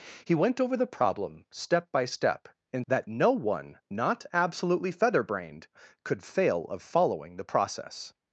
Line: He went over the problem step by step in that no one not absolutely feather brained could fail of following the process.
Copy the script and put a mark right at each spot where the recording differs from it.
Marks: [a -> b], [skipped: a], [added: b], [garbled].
He went over the problem step by step in that no one not absolutely feather brained could fail of following the process.